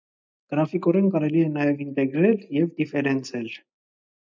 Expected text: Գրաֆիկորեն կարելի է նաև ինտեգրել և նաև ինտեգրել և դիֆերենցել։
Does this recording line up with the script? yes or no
no